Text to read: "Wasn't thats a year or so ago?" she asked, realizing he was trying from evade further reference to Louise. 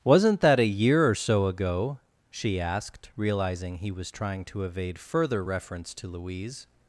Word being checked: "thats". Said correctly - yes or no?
no